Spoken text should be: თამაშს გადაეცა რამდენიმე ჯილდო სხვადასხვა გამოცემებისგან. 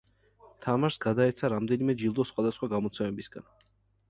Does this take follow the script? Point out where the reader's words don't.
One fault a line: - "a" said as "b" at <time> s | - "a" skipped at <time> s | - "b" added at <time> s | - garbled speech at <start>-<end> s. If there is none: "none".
none